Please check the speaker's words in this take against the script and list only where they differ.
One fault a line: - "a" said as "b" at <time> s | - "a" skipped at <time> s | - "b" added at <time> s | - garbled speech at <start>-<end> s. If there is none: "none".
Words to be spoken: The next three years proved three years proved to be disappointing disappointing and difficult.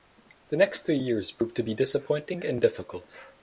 - "three years proved" skipped at 1.6 s
- "disappointing" skipped at 2.4 s